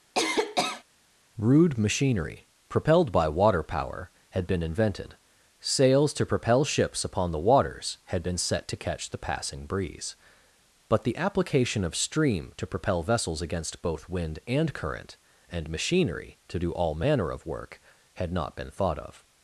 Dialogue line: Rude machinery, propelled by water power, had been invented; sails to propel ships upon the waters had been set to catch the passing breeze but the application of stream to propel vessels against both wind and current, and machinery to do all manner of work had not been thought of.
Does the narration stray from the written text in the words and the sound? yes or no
yes